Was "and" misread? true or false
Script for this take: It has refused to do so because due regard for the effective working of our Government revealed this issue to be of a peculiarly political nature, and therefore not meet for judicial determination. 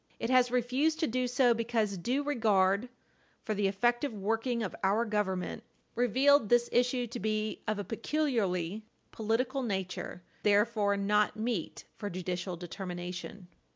true